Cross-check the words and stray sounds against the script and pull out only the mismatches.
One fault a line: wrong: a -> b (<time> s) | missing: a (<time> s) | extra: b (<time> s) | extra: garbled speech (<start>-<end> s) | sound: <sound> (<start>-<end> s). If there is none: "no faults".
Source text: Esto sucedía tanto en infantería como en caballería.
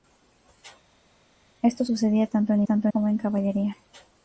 wrong: infantería -> tanto (2.6 s)